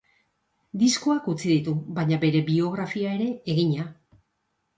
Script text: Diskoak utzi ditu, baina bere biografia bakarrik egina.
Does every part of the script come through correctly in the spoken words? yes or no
no